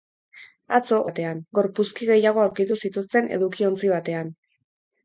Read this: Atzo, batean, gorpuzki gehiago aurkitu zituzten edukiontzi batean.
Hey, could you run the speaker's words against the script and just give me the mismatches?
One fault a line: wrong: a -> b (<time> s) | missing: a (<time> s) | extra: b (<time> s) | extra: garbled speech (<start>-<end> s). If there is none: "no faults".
no faults